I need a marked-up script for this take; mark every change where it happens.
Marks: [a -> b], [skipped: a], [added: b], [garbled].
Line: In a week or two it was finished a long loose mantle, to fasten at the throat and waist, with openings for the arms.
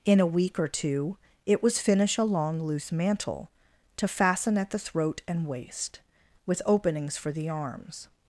In a week or two it was [finished -> finish] a long loose mantle, to fasten at the throat and waist, with openings for the arms.